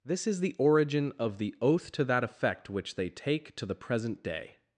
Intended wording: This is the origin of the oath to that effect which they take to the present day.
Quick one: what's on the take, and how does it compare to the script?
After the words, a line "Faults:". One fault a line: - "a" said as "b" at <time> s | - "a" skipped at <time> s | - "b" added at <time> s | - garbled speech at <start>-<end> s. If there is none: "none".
This is the origin of the oath to that effect which they take to the present day.
Faults:
none